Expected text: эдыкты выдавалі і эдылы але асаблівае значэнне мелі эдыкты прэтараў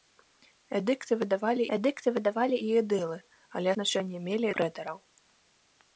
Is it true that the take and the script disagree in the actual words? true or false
true